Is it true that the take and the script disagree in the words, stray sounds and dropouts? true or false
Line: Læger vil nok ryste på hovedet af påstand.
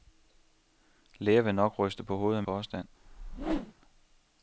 true